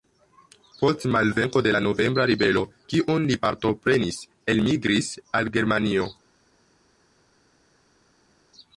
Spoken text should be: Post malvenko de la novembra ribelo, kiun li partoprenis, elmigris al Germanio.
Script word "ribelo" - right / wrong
right